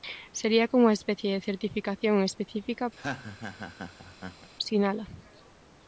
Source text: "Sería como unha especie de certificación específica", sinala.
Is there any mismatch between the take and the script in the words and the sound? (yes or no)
yes